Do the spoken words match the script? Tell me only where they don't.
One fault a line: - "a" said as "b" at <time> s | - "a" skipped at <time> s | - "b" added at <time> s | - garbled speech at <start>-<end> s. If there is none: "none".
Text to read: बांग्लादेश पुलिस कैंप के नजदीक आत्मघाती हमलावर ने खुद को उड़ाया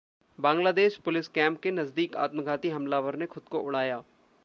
none